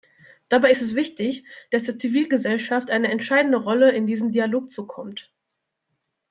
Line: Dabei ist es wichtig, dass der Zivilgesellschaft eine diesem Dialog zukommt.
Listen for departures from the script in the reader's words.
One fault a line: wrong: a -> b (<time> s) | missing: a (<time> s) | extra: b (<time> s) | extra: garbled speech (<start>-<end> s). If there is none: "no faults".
extra: entscheidende Rolle in (3.1 s)